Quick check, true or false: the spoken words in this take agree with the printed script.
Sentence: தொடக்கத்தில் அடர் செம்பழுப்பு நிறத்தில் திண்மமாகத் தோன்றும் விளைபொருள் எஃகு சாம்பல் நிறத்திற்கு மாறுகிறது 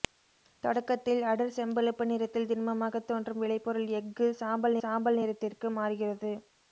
false